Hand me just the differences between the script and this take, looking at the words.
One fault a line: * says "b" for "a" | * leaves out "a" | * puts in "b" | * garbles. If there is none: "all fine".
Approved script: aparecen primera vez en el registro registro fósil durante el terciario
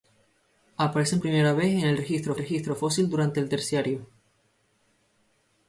all fine